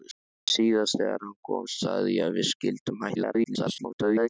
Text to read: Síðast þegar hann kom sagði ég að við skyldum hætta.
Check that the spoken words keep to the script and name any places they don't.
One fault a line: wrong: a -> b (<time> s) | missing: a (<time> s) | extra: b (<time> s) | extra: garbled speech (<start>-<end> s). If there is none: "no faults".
extra: garbled speech (3.1-4.3 s)